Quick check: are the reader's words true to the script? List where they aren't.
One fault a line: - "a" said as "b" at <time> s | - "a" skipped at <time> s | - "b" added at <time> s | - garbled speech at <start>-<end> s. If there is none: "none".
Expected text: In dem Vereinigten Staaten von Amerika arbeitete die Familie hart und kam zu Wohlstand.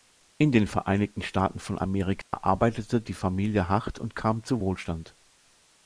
- "dem" said as "den" at 0.5 s